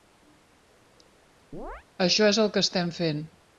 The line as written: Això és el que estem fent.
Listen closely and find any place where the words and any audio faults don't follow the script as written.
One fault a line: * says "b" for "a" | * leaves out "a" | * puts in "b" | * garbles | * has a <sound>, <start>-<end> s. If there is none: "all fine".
* has a chirp, 1.5-1.8 s